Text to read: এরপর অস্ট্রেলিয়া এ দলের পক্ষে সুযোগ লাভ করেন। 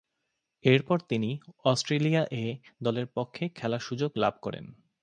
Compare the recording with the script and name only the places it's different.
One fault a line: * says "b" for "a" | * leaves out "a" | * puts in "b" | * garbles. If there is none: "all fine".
* puts in "তিনি"
* puts in "খেলার"